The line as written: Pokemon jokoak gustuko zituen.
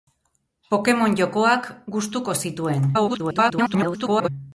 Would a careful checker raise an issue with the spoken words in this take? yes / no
yes